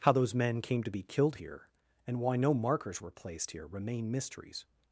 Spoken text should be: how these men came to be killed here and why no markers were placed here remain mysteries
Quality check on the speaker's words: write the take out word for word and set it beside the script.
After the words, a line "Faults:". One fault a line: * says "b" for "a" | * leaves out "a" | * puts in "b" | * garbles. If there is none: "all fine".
how those men came to be killed here and why no markers were placed here remain mysteries
Faults:
* says "those" for "these"